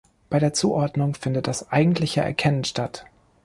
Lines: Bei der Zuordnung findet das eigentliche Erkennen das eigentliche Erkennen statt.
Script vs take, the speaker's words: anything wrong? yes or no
yes